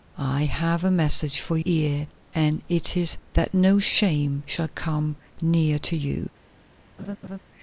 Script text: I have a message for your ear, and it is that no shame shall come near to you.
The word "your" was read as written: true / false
false